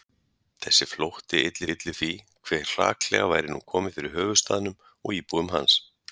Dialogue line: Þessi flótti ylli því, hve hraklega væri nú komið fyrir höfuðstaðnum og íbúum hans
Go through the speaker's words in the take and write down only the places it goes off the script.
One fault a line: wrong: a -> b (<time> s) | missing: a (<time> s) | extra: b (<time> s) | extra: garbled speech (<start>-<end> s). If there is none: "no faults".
extra: ylli (1.7 s)